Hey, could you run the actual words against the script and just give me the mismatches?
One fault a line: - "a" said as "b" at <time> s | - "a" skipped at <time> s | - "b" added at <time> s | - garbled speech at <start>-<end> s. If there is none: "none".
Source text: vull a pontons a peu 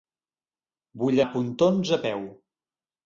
none